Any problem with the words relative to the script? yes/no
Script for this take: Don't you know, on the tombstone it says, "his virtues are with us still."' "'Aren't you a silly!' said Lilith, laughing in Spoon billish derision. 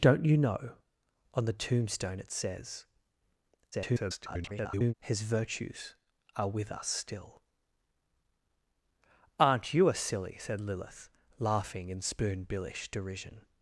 yes